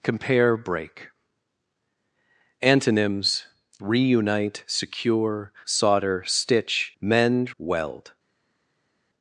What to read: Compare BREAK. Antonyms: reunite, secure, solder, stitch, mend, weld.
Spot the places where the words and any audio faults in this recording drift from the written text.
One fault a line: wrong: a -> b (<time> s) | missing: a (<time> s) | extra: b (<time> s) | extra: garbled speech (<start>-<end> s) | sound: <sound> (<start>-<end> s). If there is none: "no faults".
no faults